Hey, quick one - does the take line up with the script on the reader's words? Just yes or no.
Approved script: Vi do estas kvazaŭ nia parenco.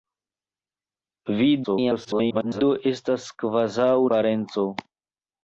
no